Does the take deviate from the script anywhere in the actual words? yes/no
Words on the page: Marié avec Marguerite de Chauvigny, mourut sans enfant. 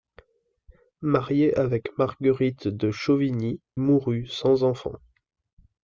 no